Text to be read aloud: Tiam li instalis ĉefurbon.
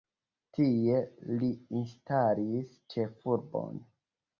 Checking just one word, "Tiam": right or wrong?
wrong